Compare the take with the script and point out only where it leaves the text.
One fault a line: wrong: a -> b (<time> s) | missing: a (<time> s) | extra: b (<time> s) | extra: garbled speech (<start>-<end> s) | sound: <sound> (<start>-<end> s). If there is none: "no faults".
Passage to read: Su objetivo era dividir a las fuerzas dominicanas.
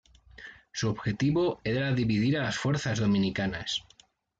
no faults